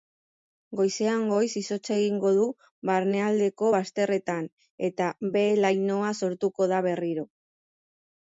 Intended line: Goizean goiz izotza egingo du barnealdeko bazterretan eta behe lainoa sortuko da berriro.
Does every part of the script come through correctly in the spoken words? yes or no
yes